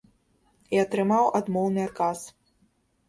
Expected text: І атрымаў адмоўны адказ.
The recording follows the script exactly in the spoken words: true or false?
true